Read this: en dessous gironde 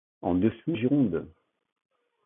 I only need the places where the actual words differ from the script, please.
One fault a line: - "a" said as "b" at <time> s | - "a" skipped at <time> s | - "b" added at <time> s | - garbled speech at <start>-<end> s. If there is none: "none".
none